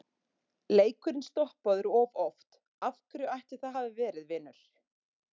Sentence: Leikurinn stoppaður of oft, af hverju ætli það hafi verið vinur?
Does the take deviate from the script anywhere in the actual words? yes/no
no